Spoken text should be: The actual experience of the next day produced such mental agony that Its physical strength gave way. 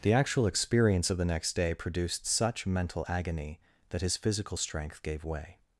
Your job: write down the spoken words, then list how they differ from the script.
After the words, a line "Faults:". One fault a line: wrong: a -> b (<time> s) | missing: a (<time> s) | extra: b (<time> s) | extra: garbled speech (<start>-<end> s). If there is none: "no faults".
The actual experience of the next day produced such mental agony that His physical strength gave way.
Faults:
wrong: Its -> His (4.0 s)